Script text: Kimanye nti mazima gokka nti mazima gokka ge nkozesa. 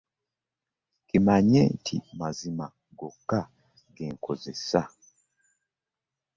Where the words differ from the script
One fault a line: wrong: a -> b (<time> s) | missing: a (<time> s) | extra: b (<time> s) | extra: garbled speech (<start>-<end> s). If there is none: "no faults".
missing: nti mazima gokka (3.4 s)